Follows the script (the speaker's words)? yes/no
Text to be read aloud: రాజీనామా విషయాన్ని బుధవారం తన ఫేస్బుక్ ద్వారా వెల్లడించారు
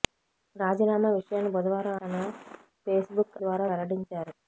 yes